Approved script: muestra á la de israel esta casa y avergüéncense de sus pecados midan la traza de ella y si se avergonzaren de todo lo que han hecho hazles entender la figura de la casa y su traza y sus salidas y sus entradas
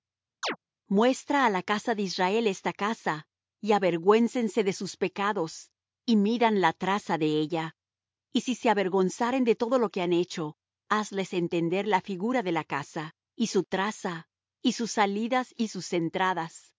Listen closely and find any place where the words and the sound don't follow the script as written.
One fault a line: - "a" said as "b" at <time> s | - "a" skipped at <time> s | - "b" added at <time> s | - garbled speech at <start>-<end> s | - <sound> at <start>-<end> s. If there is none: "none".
- chirp at 0.4-0.6 s
- "casa" added at 1.6 s
- "y" added at 6.0 s